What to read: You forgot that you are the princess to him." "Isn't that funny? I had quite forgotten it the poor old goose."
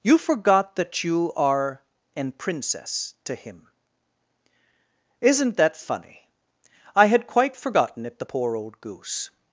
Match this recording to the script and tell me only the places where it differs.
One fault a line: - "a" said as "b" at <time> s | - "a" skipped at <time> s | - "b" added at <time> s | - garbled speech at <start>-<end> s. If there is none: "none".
- "the" said as "an" at 2.1 s